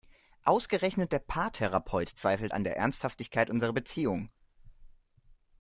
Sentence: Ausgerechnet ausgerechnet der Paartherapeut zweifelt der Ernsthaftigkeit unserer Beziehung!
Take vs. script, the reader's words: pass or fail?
fail